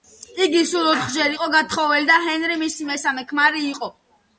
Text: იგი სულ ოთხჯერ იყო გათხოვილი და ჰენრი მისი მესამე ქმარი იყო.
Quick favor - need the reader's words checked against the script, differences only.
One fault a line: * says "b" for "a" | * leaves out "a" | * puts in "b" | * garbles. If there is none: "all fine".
all fine